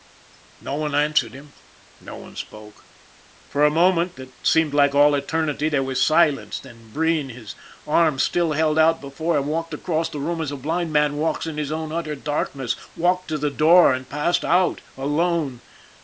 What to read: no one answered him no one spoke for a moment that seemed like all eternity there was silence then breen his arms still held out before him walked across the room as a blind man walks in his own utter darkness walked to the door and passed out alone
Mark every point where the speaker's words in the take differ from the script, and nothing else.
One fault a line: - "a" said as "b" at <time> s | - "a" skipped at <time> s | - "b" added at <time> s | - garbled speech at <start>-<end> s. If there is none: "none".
none